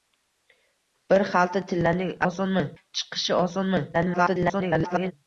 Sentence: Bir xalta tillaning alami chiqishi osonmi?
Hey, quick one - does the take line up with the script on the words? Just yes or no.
no